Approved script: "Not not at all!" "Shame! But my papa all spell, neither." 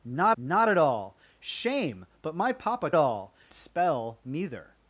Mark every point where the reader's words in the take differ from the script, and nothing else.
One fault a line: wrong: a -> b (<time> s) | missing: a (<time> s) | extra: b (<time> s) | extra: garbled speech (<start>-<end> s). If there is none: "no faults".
no faults